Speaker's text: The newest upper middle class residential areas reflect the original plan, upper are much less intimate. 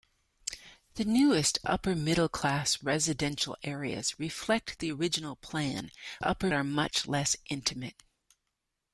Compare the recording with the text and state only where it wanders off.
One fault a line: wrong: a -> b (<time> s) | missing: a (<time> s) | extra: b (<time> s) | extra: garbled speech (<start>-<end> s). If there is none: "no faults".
no faults